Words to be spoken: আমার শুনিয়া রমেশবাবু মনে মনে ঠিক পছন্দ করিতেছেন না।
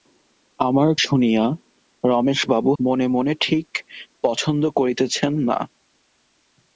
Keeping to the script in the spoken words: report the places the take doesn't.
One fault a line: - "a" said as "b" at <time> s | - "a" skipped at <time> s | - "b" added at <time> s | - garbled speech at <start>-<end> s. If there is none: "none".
none